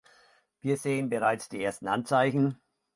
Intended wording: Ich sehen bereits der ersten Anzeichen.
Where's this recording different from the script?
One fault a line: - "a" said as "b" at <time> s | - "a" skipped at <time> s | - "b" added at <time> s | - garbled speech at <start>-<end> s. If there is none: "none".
- "Ich" said as "Wir" at 0.6 s
- "der" said as "die" at 1.5 s